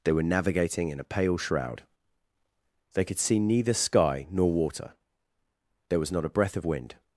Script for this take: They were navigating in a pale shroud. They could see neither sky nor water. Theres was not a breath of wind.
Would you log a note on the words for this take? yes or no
yes